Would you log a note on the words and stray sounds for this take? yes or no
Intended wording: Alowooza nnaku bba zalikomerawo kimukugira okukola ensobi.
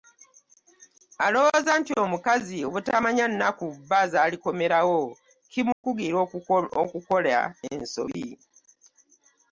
yes